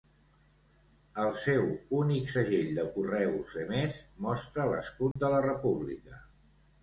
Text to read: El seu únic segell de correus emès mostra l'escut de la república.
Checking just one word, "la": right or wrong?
right